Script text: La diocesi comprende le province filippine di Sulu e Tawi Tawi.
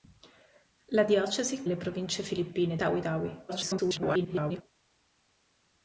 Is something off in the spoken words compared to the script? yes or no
yes